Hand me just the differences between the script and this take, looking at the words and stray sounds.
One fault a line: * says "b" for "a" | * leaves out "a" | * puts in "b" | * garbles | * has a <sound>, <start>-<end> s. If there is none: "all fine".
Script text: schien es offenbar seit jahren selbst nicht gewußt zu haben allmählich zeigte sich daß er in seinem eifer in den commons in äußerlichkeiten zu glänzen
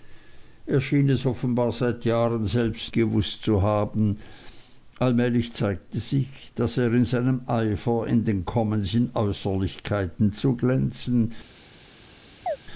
* leaves out "nicht"
* has a chirp, 12.5-12.6 s